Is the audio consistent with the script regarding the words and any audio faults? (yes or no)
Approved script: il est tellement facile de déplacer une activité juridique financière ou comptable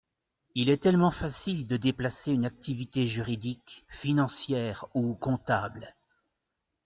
yes